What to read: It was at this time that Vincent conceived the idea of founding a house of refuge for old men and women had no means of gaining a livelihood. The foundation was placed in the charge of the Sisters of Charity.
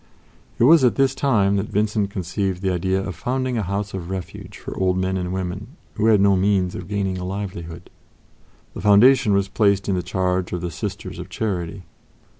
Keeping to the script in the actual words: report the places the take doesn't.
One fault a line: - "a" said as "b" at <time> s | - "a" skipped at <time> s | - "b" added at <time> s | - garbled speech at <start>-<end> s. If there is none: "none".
- "who" added at 5.9 s